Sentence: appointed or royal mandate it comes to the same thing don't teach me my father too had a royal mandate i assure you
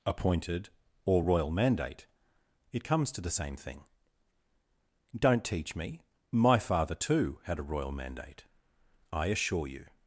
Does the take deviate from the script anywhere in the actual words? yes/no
no